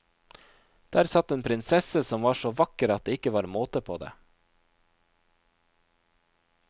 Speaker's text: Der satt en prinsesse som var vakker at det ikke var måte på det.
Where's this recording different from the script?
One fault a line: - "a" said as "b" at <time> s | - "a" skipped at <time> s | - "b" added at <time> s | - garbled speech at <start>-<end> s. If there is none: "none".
- "så" added at 2.3 s